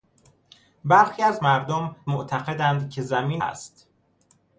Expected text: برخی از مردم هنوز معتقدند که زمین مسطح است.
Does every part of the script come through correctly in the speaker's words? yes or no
no